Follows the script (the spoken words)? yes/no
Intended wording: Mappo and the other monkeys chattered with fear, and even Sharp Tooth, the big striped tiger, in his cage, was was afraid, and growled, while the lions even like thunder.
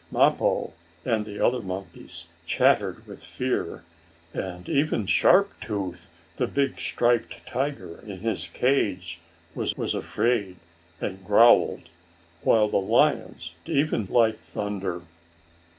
yes